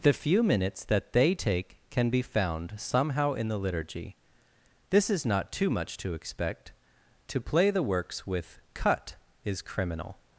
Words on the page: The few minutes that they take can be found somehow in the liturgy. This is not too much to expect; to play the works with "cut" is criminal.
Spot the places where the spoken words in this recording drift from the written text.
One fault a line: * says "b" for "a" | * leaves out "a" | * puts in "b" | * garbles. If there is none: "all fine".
all fine